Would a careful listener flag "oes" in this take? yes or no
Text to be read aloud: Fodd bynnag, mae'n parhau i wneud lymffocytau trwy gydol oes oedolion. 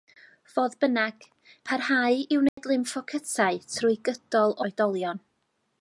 yes